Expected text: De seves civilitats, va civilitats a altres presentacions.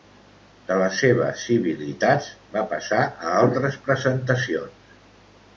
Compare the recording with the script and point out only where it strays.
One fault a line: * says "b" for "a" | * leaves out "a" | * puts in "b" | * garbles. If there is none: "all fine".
* puts in "les"
* says "passar" for "civilitats"